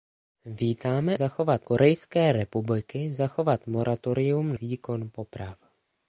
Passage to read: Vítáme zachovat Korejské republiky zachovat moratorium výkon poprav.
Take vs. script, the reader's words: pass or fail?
pass